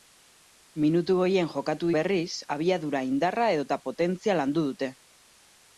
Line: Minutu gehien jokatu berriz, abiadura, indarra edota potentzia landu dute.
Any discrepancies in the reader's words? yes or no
no